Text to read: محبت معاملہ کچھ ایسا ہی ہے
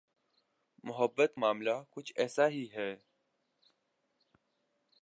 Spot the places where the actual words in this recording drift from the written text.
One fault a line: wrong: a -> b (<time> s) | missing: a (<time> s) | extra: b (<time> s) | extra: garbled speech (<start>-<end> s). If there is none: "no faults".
no faults